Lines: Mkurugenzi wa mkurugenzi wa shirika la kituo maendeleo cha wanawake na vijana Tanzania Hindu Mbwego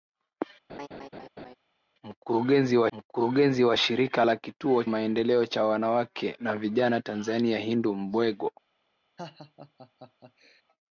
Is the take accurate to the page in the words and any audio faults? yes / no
no